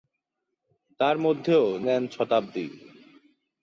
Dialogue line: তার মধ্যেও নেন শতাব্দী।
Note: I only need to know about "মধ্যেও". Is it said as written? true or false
true